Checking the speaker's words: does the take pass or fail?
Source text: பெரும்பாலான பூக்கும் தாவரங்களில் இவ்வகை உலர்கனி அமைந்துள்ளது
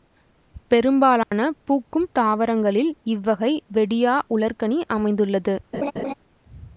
fail